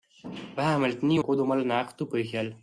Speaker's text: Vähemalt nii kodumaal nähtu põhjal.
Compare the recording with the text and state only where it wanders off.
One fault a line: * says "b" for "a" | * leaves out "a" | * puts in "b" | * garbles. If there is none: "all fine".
all fine